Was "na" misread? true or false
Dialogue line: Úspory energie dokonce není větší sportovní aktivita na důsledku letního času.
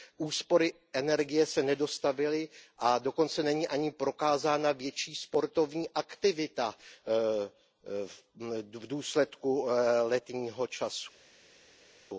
true